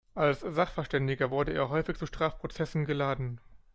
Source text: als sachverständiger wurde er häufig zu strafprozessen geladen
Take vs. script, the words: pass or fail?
pass